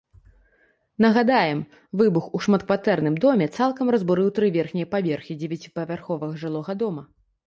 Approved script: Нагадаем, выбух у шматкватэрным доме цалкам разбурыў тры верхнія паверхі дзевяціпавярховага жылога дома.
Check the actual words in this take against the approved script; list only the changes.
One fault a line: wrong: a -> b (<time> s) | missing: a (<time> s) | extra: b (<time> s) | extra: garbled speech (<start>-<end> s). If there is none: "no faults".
no faults